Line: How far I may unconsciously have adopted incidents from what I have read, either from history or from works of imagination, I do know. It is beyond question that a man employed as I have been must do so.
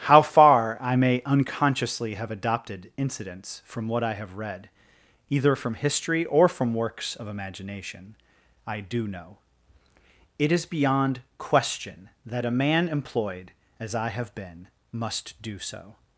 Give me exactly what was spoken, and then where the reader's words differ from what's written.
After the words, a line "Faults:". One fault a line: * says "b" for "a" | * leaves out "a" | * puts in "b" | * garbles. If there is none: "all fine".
How far I may unconsciously have adopted incidents from what I have read, either from history or from works of imagination, I do know. It is beyond question that a man employed as I have been must do so.
Faults:
all fine